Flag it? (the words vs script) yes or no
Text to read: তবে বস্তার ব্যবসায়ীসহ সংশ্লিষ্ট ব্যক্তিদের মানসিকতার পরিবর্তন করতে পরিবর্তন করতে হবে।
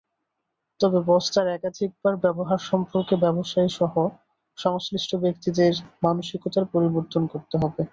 yes